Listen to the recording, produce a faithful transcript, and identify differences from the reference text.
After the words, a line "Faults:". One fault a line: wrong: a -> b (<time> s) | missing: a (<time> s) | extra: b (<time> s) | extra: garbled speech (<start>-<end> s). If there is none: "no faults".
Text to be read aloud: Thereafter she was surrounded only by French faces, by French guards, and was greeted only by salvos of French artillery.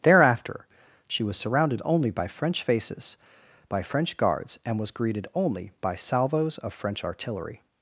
Thereafter she was surrounded only by French faces, by French guards, and was greeted only by salvos of French artillery.
Faults:
no faults